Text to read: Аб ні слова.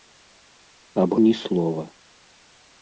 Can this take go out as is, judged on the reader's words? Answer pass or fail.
pass